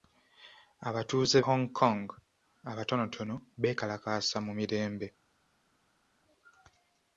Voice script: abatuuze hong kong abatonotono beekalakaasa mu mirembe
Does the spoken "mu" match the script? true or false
true